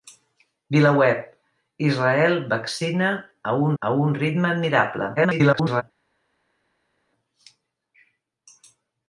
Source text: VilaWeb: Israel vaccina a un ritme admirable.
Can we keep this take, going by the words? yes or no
no